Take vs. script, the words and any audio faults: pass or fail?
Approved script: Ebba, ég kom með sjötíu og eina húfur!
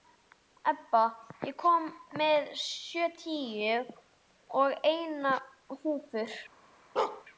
fail